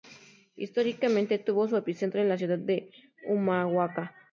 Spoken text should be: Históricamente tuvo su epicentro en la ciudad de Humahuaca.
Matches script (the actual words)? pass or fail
pass